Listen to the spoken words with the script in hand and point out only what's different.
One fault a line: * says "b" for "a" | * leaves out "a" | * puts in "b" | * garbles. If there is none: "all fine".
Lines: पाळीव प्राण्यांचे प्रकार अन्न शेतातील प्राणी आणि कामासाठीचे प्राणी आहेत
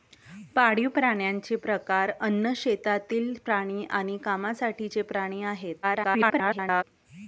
* garbles